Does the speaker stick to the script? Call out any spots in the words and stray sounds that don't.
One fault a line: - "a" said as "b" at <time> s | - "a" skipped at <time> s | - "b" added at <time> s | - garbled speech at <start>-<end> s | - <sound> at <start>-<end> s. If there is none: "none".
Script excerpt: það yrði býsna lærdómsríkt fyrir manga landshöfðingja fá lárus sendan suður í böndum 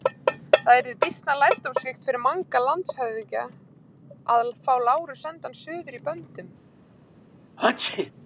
- "að" added at 4.4 s
- sneeze at 7.6-8.1 s